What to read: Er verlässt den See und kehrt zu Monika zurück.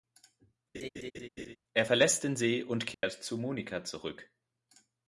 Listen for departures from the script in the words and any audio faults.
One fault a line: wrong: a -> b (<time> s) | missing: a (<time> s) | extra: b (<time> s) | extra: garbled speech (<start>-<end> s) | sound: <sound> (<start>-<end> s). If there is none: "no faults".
sound: laugh (0.7-1.6 s)
sound: dropout (2.9-3.0 s)